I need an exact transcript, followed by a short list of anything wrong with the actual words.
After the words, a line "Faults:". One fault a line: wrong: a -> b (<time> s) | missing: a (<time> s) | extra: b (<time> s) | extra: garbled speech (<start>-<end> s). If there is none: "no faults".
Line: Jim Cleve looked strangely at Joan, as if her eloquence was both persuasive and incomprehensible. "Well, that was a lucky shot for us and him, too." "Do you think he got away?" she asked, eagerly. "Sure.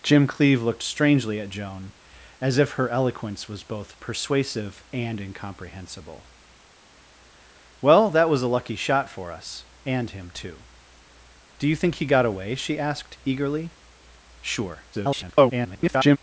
Jim Cleve looked strangely at Joan, as if her eloquence was both persuasive and incomprehensible. "Well, that was a lucky shot for us and him, too." "Do you think he got away?" she asked, eagerly. "Sure. [garbled]
Faults:
extra: garbled speech (14.9-16.2 s)